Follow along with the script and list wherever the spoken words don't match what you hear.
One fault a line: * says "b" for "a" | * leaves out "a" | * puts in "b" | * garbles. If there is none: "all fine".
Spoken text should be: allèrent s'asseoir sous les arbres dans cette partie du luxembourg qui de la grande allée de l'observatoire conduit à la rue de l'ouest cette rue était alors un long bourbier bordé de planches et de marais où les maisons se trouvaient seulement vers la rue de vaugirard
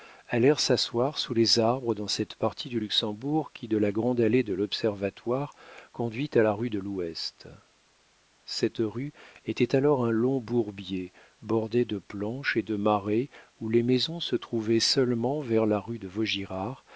all fine